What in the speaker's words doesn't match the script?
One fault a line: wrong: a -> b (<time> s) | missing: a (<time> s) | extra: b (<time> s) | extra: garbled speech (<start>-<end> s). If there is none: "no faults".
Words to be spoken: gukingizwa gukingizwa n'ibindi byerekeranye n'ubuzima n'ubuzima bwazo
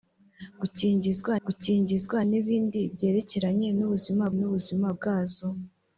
no faults